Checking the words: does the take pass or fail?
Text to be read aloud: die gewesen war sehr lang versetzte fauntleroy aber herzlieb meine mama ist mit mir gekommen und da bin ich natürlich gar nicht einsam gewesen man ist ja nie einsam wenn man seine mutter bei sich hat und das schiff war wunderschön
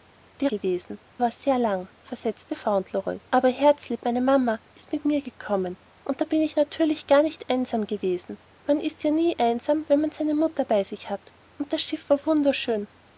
pass